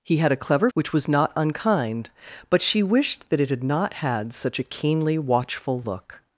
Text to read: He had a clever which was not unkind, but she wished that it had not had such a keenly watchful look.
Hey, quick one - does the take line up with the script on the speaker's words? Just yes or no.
yes